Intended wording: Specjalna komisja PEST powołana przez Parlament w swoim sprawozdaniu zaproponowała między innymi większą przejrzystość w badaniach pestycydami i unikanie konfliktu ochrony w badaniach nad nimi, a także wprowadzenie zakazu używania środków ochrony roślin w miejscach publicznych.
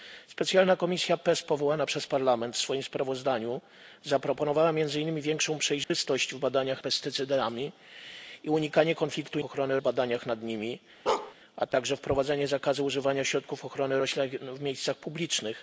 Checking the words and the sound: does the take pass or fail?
fail